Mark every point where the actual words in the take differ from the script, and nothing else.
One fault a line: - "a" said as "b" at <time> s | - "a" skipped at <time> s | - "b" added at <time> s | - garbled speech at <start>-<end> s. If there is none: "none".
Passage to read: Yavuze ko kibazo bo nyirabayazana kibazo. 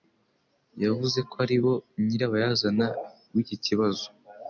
- "kibazo" said as "ari" at 1.4 s
- "w'iki" added at 3.3 s